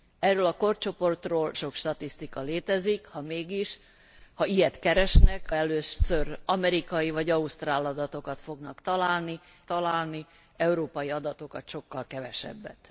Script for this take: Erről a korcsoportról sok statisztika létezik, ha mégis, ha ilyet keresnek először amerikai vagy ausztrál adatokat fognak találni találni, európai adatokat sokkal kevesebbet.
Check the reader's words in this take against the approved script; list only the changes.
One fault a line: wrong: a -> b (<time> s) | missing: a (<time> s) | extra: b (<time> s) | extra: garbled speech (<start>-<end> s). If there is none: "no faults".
no faults